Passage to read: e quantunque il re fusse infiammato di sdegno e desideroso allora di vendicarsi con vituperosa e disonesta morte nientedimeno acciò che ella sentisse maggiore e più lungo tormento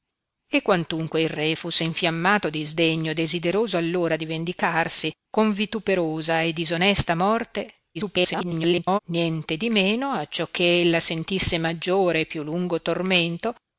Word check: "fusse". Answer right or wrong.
right